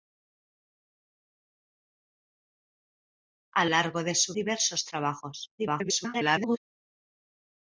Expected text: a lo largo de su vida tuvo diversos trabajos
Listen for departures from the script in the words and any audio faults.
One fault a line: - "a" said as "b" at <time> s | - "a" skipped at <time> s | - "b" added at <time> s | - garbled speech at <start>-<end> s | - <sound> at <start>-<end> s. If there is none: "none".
- "lo" skipped at 3.7 s
- "vida tuvo" skipped at 4.3 s
- garbled speech at 5.6-6.6 s